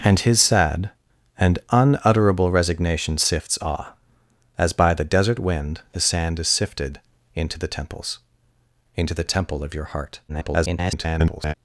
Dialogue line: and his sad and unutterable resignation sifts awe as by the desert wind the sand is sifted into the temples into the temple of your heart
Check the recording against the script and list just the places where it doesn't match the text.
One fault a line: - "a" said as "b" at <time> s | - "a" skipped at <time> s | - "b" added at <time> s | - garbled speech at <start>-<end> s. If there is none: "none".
- garbled speech at 10.3-11.5 s